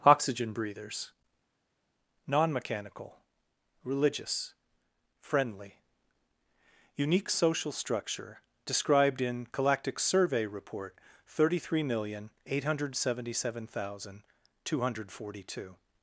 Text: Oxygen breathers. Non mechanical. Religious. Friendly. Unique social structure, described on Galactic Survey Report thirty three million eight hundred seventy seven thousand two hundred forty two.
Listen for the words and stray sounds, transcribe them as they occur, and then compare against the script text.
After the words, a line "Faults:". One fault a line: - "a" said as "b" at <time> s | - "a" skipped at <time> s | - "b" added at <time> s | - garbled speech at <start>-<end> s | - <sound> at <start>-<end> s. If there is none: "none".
Oxygen breathers. Non mechanical. Religious. Friendly. Unique social structure, described in Galactic Survey Report thirty three million eight hundred seventy seven thousand two hundred forty two.
Faults:
- "on" said as "in" at 9.2 s